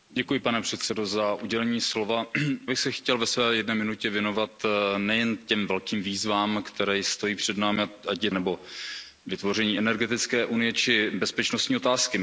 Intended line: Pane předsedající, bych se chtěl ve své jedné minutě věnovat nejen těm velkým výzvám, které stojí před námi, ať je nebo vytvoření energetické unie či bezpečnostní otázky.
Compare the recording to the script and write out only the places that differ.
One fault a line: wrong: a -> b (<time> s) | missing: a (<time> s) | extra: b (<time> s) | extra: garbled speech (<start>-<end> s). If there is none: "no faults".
no faults